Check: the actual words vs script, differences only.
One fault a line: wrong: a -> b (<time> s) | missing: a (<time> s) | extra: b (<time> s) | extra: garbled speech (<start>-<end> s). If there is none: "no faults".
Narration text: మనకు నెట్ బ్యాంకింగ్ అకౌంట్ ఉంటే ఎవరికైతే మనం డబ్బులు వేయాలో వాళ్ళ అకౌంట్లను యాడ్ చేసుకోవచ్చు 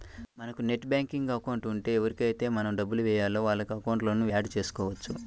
no faults